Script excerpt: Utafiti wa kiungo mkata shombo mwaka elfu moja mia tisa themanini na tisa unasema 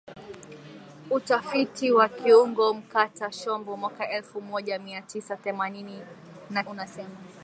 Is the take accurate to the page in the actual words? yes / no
no